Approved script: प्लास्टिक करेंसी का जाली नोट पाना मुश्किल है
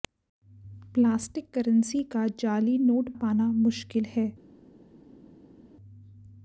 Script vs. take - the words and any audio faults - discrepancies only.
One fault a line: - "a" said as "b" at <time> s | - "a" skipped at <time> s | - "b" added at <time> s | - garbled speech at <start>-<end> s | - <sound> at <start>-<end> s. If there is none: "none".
none